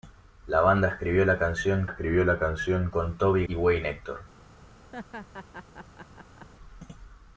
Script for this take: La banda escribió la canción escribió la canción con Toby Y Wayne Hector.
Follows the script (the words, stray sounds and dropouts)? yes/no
no